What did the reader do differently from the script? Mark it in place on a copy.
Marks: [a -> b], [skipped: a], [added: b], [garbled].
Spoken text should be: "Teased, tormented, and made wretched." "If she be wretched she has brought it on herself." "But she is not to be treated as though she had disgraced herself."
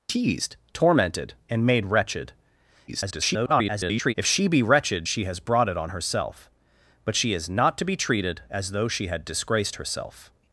"Teased, tormented, and made wretched." [garbled] "If she be wretched she has brought it on herself." "But she is not to be treated as though she had disgraced herself."